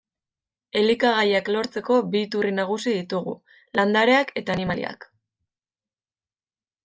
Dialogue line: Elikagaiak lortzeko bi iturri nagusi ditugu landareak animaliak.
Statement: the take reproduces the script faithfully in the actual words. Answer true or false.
false